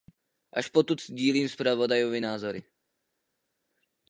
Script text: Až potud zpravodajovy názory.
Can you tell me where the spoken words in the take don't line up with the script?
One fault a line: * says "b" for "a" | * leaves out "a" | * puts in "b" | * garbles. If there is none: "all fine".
* puts in "sdílím"